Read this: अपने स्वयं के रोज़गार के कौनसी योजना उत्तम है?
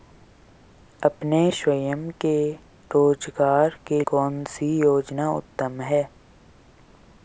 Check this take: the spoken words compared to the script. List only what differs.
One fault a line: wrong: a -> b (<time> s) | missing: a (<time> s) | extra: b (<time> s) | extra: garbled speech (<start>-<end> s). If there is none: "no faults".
no faults